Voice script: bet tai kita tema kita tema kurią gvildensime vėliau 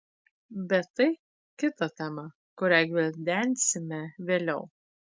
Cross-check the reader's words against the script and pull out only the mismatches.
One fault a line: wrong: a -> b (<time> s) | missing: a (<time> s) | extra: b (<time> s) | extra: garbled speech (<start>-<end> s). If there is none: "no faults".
missing: kita tema (2.2 s)